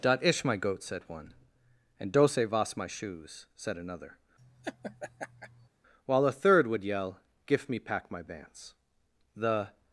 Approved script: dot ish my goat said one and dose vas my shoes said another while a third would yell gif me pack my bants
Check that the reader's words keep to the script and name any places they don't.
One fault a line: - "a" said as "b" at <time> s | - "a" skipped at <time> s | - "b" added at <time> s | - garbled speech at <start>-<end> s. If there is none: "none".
- "the" added at 9.3 s